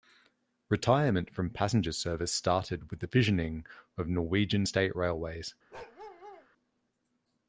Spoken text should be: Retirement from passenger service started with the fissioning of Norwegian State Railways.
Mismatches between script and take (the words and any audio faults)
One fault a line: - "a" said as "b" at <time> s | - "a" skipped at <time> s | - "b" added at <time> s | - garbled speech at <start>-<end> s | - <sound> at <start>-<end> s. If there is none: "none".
- bark at 5.7-6.5 s